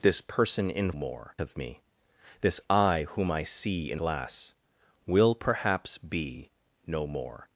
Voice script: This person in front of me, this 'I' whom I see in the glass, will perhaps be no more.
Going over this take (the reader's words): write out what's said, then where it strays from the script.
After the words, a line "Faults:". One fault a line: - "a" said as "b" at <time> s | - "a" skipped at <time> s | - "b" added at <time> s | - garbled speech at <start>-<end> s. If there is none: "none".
This person in more of me, this 'I' whom I see in glass, will perhaps be no more.
Faults:
- "front" said as "more" at 1.0 s
- "the" skipped at 4.0 s